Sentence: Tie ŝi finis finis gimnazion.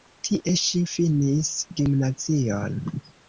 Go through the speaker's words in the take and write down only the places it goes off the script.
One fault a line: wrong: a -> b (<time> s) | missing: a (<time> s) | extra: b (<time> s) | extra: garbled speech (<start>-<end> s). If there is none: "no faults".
missing: finis (1.5 s)